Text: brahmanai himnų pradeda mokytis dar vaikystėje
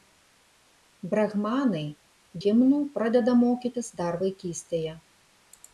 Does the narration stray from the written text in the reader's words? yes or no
no